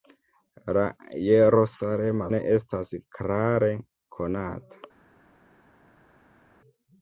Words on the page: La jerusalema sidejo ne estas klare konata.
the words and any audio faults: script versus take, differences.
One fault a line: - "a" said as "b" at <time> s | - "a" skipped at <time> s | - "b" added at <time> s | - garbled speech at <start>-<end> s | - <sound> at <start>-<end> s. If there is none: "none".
- "sidejo" skipped at 2.3 s